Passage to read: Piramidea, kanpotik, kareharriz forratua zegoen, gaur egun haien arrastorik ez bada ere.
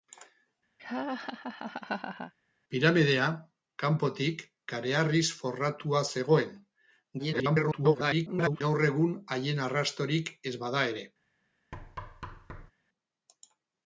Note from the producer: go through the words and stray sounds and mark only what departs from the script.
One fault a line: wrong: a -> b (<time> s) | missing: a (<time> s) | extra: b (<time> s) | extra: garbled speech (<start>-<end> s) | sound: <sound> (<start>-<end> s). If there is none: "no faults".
sound: laugh (0.8-2.3 s)
extra: garbled speech (7.2-8.6 s)
sound: thud (11.7-12.7 s)